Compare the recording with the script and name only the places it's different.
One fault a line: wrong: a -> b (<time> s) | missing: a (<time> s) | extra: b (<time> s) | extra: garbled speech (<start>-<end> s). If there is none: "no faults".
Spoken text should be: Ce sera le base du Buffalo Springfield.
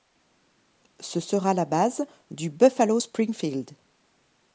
wrong: le -> la (1.5 s)